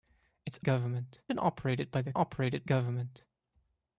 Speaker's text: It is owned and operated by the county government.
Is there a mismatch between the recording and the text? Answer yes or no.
yes